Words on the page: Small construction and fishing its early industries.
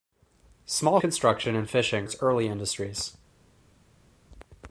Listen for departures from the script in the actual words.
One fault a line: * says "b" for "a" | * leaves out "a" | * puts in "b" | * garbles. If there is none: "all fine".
all fine